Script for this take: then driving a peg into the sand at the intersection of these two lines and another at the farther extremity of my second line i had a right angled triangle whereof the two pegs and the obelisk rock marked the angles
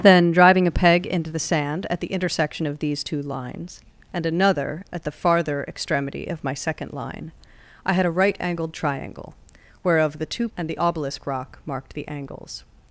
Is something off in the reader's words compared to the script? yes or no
yes